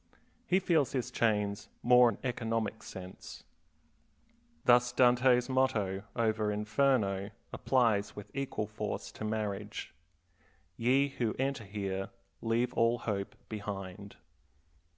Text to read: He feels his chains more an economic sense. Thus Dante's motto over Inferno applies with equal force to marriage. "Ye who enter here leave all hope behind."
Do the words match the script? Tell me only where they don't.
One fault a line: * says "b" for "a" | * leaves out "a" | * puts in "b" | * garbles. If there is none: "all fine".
all fine